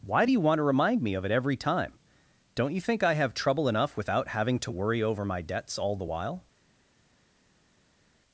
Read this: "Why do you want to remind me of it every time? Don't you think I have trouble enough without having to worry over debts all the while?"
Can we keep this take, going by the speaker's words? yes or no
no